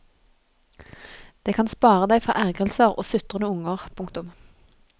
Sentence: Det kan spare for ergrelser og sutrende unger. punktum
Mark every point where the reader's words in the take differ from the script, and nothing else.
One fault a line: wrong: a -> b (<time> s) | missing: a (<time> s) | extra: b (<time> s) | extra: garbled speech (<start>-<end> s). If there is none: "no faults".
extra: deg (2.1 s)